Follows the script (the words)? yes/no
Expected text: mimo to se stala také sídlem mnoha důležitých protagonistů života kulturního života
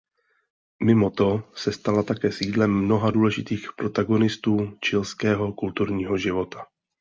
no